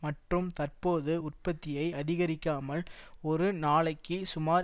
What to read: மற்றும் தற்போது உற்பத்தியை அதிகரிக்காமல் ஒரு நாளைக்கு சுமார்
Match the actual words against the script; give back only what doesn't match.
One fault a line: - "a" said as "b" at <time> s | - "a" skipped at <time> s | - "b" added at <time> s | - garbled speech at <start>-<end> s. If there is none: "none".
none